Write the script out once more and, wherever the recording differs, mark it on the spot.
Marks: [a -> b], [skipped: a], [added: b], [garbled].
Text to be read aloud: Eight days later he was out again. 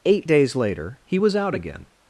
Eight days later he was out again.